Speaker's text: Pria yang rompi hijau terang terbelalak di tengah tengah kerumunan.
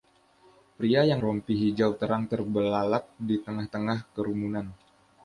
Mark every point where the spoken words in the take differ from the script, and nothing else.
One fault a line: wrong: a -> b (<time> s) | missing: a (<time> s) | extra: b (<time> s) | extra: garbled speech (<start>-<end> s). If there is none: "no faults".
no faults